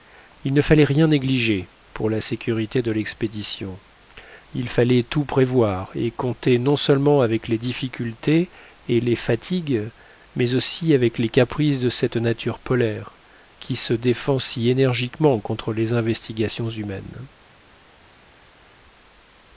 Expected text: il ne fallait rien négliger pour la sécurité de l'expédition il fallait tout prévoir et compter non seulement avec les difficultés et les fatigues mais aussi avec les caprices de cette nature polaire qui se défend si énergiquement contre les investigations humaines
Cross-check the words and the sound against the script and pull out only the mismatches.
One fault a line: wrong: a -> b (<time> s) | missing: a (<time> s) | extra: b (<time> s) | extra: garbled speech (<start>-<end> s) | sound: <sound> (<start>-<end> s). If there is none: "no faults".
no faults